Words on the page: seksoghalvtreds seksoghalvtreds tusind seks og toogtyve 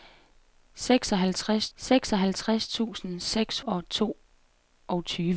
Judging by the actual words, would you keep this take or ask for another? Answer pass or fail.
pass